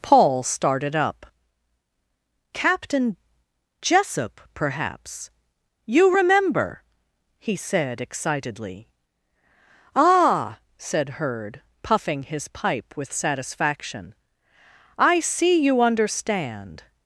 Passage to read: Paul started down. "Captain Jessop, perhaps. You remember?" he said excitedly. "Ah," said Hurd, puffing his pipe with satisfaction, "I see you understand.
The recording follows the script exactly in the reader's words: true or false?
false